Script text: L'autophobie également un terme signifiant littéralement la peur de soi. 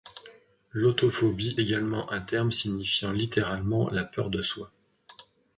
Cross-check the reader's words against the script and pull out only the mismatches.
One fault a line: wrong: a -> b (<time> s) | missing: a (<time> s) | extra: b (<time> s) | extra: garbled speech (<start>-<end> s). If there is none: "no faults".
no faults